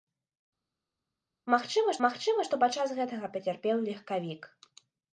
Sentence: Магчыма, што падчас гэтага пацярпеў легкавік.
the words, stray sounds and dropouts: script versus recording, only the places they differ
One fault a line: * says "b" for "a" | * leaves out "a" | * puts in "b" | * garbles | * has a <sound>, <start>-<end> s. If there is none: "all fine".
* puts in "магчыма"